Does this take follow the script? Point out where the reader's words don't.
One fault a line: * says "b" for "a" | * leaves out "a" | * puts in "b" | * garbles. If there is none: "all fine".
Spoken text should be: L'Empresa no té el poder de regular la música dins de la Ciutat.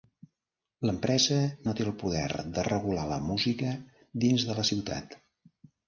all fine